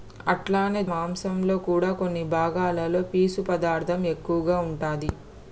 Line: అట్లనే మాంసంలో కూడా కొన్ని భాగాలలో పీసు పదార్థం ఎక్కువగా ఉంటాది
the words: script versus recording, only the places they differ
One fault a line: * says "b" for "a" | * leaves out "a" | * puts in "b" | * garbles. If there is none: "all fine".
all fine